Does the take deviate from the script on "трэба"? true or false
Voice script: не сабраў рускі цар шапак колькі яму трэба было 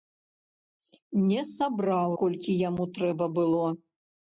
false